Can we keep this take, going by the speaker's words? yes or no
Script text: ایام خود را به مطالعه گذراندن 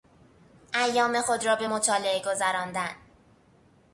yes